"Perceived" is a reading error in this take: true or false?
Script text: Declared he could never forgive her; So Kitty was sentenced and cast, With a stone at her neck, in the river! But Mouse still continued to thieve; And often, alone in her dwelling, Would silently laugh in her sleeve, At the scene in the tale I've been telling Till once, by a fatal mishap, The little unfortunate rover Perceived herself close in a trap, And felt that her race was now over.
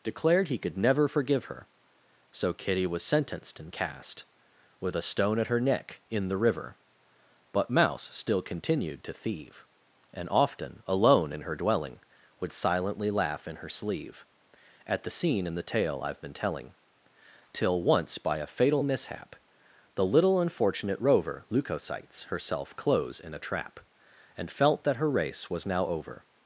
true